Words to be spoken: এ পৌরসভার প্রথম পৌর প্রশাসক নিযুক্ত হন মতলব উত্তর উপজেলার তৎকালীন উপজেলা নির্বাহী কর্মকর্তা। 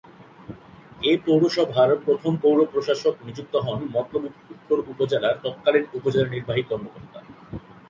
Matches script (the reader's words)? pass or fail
pass